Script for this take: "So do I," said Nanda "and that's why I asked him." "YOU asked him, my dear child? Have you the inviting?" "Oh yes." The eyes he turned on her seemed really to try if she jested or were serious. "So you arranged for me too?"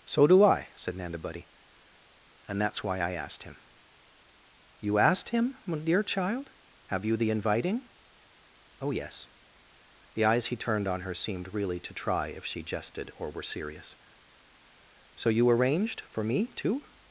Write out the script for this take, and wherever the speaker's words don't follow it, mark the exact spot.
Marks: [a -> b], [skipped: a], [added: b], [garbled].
"So do I," said Nanda [added: buddy] "and that's why I asked him." "YOU asked him, my dear child? Have you the inviting?" "Oh yes." The eyes he turned on her seemed really to try if she jested or were serious. "So you arranged for me too?"